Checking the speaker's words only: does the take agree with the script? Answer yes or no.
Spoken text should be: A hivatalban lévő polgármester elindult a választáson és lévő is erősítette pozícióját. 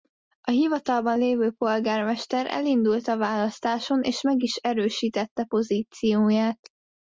no